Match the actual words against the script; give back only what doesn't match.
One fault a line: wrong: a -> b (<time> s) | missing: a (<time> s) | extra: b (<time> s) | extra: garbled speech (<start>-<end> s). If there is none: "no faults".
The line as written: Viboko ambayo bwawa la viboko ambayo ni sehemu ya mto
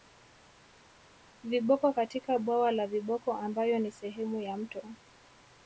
wrong: ambayo -> katika (1.9 s)